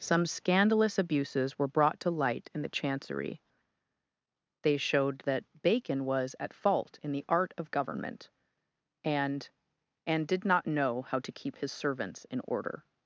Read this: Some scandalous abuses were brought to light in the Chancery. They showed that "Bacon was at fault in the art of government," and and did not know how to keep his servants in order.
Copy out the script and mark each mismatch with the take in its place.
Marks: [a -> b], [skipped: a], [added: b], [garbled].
Some scandalous abuses were brought to light in the Chancery. They showed that "Bacon was at fault in the art of government," and and did not know how to keep his servants in order.